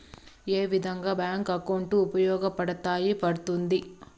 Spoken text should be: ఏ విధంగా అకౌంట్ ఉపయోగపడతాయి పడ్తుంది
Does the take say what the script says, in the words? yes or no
no